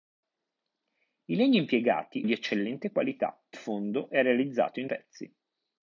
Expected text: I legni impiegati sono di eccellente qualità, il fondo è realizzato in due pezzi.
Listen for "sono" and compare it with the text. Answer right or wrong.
wrong